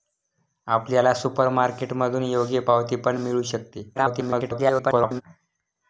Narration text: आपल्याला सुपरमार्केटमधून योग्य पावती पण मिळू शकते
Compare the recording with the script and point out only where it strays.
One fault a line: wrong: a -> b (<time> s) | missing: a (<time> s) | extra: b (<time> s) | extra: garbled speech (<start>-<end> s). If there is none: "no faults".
extra: garbled speech (3.9-5.2 s)